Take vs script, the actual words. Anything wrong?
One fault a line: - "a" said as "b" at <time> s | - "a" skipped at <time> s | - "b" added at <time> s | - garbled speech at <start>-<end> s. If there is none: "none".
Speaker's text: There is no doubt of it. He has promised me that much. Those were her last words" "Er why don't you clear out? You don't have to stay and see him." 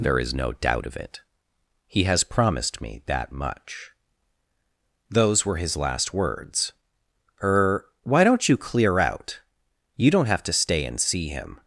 - "her" said as "his" at 5.6 s